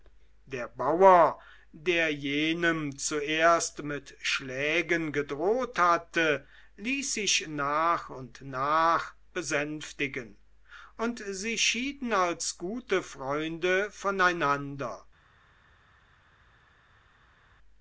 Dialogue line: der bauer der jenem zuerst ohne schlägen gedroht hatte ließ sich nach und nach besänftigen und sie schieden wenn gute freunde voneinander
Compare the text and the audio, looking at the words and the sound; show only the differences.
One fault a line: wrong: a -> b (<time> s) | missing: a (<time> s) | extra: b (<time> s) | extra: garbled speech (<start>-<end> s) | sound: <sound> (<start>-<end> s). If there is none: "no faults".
wrong: ohne -> mit (3.8 s)
wrong: wenn -> als (12.1 s)